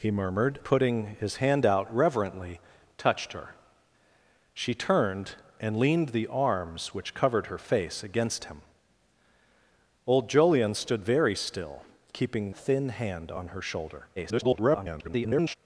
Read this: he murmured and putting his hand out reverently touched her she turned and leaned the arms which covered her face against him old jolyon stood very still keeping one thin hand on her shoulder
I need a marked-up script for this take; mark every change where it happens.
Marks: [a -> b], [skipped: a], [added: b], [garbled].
he murmured [skipped: and] putting his hand out reverently touched her she turned and leaned the arms which covered her face against him old jolyon stood very still keeping [skipped: one] thin hand on her shoulder [garbled]